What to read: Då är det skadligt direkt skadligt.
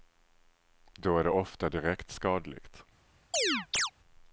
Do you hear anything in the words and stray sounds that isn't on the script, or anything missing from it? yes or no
yes